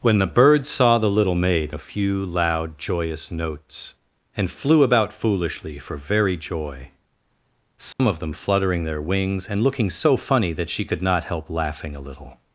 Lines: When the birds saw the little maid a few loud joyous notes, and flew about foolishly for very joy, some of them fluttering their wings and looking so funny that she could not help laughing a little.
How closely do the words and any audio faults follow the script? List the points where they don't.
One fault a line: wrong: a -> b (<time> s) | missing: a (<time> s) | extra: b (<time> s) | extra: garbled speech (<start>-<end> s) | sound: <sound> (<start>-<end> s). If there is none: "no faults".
sound: dropout (7.9-8.0 s)